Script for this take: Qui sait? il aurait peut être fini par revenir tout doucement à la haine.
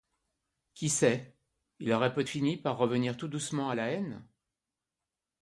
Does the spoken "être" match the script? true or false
false